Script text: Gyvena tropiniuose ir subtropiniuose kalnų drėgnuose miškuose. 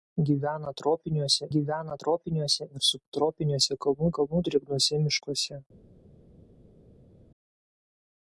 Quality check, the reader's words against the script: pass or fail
fail